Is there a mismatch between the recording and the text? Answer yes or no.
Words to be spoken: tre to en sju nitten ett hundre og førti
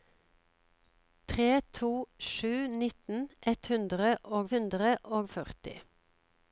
yes